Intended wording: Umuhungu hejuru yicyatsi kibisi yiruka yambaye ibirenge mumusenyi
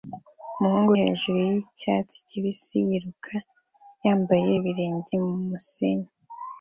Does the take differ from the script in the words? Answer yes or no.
no